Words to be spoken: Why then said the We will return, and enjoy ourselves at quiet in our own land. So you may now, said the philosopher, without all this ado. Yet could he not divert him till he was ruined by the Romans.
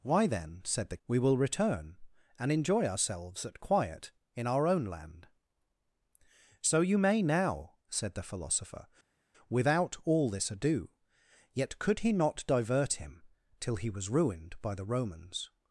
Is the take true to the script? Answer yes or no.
yes